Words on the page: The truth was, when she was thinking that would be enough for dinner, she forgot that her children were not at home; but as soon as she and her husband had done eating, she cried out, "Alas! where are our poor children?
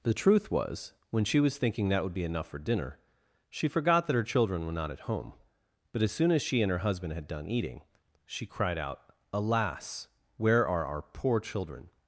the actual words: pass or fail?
pass